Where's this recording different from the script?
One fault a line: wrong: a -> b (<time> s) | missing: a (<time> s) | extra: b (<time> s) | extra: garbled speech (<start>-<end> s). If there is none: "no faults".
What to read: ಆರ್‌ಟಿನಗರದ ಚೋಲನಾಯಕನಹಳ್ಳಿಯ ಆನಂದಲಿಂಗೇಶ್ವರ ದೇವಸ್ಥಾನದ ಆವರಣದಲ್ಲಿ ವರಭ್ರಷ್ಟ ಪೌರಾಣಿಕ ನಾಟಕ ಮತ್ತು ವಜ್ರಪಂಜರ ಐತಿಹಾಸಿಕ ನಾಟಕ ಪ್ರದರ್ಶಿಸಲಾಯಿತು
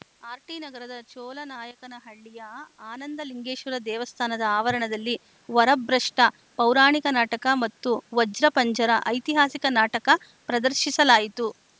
no faults